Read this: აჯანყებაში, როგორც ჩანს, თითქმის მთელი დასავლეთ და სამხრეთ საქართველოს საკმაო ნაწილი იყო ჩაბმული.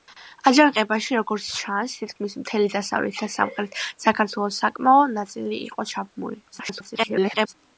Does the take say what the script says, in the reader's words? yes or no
no